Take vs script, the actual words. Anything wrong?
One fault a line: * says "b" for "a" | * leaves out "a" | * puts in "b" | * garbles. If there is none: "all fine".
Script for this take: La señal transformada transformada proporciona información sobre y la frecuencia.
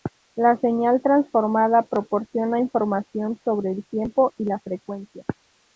* leaves out "transformada"
* puts in "el tiempo"